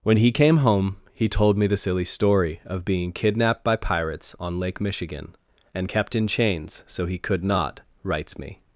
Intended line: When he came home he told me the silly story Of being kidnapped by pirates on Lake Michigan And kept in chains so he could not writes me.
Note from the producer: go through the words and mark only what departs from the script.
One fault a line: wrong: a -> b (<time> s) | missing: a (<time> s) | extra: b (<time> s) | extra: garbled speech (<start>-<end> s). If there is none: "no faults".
no faults